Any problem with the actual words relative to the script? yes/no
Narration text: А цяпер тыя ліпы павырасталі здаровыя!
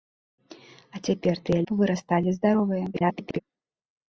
yes